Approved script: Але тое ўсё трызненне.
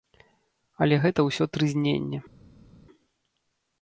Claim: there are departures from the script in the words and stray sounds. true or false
true